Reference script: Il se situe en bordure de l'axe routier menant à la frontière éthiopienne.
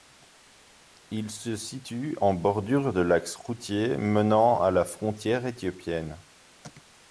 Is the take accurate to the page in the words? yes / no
yes